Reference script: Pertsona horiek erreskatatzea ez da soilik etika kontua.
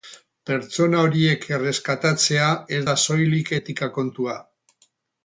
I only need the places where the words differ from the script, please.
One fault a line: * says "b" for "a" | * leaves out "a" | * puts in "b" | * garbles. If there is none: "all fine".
all fine